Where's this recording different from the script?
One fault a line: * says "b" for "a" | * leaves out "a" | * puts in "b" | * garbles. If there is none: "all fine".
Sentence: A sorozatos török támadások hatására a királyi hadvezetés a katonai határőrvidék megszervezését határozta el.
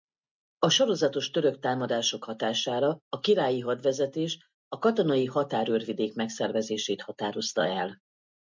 all fine